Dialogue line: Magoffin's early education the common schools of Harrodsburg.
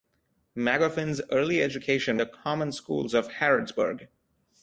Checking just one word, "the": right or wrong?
right